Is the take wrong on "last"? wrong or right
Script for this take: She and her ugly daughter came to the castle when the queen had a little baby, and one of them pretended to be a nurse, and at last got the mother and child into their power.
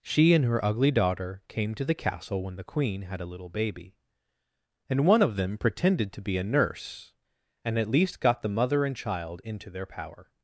wrong